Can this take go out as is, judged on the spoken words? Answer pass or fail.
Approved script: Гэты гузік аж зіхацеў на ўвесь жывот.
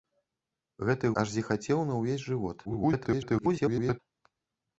fail